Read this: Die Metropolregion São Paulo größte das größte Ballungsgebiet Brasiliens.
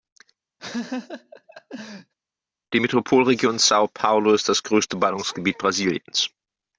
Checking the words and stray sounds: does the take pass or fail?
fail